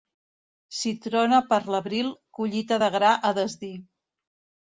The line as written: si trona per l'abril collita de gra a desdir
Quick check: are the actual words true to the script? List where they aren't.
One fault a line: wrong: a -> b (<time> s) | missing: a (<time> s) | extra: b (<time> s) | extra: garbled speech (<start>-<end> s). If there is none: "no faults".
no faults